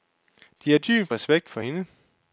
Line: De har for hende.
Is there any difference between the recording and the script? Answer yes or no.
yes